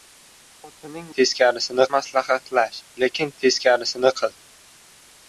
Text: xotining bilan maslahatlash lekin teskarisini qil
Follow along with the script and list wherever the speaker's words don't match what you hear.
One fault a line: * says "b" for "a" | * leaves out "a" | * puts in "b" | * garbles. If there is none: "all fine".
* says "teskarisini" for "bilan"